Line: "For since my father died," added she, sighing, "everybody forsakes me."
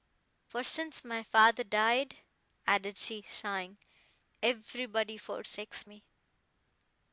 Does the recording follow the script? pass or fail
pass